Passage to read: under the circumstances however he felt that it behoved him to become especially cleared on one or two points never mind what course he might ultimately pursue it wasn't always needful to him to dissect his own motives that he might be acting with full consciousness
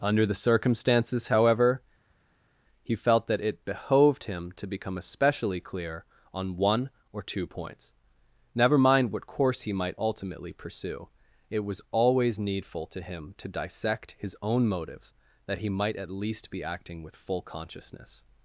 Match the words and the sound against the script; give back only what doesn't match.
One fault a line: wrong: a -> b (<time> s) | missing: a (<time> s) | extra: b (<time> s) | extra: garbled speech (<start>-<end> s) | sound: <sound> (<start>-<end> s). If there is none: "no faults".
wrong: cleared -> clear (5.6 s)
wrong: wasn't -> was (11.6 s)
extra: at least (16.0 s)